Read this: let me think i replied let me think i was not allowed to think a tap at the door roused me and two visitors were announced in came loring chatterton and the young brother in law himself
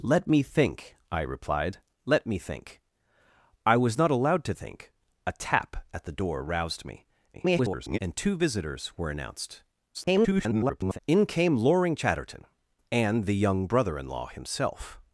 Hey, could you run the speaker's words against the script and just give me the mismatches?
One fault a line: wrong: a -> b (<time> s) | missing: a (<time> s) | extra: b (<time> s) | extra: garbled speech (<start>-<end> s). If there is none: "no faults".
extra: garbled speech (7.3-8.0 s)
extra: garbled speech (9.9-11.0 s)